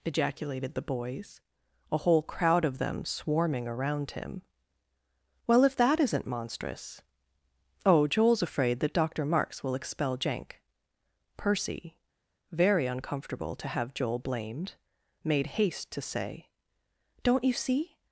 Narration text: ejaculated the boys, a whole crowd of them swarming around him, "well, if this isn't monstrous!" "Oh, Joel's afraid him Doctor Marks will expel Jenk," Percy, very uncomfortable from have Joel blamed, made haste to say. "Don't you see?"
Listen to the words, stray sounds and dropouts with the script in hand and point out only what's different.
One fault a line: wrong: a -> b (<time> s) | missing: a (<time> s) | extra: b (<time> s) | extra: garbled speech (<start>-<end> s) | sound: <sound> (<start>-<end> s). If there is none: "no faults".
wrong: this -> that (5.7 s)
wrong: him -> that (8.8 s)
wrong: from -> to (13.6 s)